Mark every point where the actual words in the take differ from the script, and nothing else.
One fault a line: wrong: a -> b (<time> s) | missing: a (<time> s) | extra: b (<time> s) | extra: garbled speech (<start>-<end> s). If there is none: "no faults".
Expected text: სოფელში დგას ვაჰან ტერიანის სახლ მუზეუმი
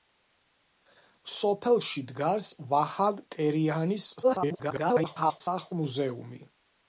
extra: garbled speech (4.2-5.4 s)